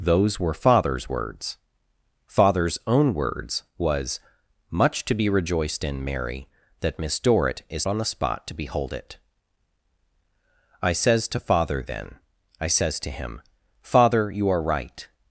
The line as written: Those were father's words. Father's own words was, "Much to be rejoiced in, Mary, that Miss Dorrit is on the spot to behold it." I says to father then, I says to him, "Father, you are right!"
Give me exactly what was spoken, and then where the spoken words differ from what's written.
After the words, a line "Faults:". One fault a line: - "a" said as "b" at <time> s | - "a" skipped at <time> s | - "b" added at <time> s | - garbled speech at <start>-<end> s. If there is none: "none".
Those were father's words. Father's own words was, "Much to be rejoiced in, Mary, that Miss Dorrit is on the spot to behold it." I says to father then, I says to him, "Father, you are right!"
Faults:
none